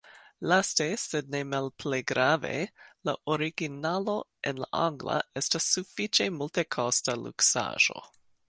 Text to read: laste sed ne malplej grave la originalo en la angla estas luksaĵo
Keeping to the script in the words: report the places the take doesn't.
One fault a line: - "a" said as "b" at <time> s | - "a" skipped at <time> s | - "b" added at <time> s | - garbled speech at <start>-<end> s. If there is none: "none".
- "sufiĉe multekosta" added at 5.8 s